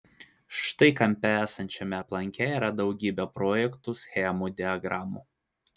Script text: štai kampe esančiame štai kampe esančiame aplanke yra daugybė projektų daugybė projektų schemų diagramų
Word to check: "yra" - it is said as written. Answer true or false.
true